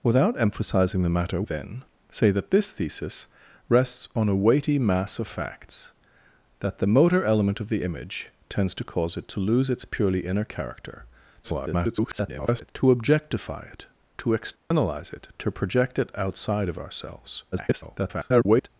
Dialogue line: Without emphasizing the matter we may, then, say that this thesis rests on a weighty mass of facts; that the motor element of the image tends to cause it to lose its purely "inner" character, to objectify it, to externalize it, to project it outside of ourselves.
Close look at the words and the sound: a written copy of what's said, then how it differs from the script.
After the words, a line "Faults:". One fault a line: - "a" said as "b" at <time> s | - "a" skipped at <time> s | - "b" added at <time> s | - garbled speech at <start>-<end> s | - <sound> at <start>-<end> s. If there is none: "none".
Without emphasizing the matter then, say that this thesis rests on a weighty mass of facts; that the motor element of the image tends to cause it to lose its purely "inner" character, [garbled] to objectify it, to externalize it, to project it outside of ourselves. [garbled]
Faults:
- "we may" skipped at 1.4 s
- garbled speech at 11.4-12.7 s
- dropout at 14.6-14.7 s
- garbled speech at 17.5-18.7 s